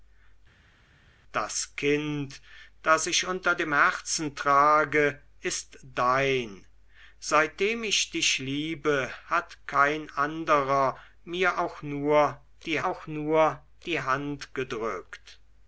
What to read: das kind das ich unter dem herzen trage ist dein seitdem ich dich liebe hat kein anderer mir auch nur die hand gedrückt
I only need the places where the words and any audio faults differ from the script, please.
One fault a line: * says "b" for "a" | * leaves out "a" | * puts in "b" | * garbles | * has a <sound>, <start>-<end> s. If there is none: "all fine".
* puts in "auch nur die"